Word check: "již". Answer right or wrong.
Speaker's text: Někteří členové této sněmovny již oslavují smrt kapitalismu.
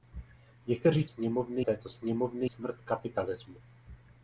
wrong